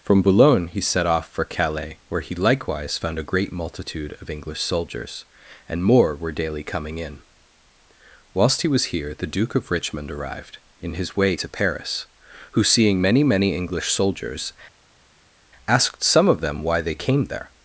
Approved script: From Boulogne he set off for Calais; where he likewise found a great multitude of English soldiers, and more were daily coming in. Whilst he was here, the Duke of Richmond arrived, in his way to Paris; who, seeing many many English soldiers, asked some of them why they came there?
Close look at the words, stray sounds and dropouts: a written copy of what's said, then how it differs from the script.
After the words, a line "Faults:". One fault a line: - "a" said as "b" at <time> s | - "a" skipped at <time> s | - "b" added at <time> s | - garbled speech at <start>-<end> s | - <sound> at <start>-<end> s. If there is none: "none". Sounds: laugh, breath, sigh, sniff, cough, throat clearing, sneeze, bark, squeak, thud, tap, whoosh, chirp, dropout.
From Boulogne he set off for Calais; where he likewise found a great multitude of English soldiers, and more were daily coming in. Whilst he was here, the Duke of Richmond arrived, in his way to Paris; who, seeing many many English soldiers, asked some of them why they came there?
Faults:
none